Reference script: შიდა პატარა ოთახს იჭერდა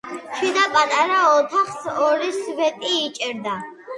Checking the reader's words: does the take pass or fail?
fail